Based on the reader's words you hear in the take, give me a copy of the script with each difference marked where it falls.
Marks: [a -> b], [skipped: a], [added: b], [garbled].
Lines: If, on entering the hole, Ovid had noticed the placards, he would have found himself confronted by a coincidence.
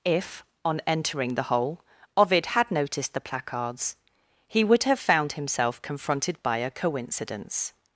If, on entering the hole, Ovid had noticed the placards, he would have found himself confronted by a coincidence.